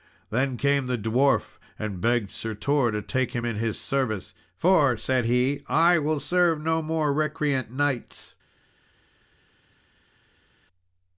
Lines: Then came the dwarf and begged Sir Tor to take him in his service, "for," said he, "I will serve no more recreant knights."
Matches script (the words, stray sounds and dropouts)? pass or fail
pass